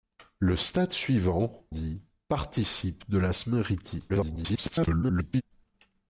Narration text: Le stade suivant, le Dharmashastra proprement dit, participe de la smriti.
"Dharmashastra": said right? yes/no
no